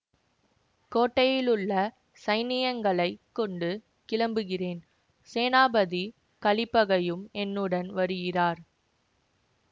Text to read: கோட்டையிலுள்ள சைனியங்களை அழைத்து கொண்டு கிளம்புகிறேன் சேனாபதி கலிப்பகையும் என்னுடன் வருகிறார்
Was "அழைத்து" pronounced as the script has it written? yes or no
no